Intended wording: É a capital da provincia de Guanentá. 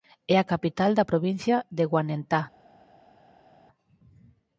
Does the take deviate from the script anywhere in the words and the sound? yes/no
no